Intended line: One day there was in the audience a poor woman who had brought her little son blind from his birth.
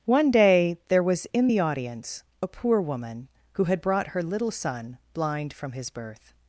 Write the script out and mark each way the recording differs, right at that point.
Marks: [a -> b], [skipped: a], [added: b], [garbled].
One day there was in the audience a poor woman who had brought her little son blind from his birth.